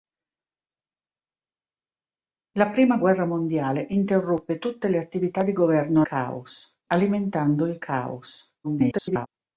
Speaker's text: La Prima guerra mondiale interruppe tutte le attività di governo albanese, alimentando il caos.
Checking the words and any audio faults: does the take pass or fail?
fail